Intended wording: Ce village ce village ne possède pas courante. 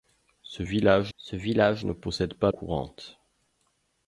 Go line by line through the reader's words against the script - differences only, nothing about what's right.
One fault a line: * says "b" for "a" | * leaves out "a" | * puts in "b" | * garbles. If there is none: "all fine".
all fine